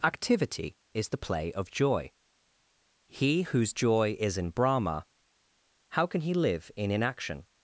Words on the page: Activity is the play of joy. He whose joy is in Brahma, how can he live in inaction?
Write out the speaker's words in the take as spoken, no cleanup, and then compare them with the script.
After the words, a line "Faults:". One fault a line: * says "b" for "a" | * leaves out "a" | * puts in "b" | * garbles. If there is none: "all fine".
Activity is the play of joy. He whose joy is in Brahma, how can he live in inaction?
Faults:
all fine